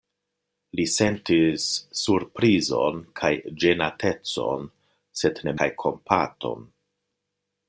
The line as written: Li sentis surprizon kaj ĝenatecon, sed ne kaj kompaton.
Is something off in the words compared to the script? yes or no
no